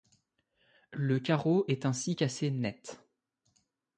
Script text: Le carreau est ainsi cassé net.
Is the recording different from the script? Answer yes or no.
no